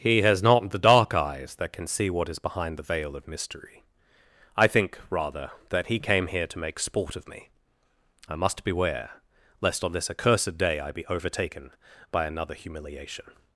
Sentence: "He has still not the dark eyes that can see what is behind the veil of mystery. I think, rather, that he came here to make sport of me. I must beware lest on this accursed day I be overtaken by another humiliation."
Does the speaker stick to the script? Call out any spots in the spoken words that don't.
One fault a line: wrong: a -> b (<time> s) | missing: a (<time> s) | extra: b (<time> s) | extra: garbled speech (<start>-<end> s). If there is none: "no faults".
missing: still (0.4 s)